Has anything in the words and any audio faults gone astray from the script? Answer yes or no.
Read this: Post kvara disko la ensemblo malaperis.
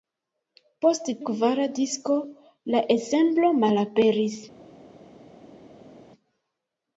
no